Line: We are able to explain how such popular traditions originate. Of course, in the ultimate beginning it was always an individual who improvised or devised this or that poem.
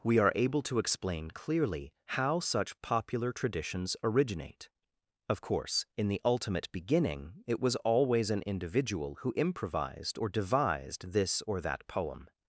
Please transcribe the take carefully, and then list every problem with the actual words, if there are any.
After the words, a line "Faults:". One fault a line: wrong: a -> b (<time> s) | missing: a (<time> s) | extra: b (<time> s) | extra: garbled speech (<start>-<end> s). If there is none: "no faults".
We are able to explain clearly how such popular traditions originate. Of course, in the ultimate beginning it was always an individual who improvised or devised this or that poem.
Faults:
extra: clearly (1.3 s)